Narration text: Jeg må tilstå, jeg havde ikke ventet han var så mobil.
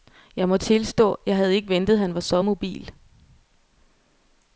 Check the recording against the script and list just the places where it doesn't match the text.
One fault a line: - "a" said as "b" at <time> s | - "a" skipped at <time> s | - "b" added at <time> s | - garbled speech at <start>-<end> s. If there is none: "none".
none